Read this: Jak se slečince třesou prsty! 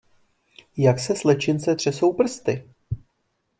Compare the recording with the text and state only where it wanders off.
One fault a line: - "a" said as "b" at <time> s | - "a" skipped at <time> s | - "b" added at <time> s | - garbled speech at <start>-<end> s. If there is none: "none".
none